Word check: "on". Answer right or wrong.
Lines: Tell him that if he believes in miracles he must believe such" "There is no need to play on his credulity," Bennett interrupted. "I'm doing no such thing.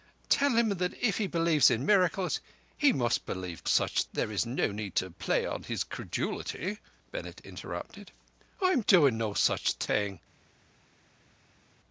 right